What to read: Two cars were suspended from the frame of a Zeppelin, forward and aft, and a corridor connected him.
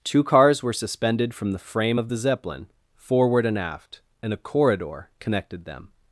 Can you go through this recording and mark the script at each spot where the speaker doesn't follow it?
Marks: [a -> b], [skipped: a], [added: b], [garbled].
Two cars were suspended from the frame of [a -> the] Zeppelin, forward and aft, and a corridor connected [him. -> them]